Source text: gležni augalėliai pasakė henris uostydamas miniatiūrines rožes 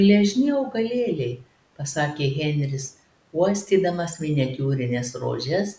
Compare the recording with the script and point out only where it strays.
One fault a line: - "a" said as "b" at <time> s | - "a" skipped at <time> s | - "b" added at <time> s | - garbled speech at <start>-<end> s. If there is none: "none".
none